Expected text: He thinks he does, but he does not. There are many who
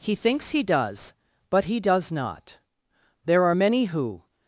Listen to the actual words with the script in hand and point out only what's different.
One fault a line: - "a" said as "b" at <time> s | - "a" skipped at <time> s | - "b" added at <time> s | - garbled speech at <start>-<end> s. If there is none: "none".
none